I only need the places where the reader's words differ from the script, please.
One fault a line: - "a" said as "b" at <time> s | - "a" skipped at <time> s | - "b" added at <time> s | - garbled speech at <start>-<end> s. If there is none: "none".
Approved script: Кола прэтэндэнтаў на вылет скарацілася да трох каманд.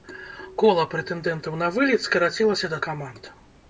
- "трох" skipped at 2.8 s